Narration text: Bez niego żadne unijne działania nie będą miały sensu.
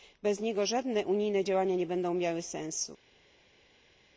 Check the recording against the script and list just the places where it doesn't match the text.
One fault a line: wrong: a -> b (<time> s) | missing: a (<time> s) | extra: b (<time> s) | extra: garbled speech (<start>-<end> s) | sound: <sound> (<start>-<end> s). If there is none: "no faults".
no faults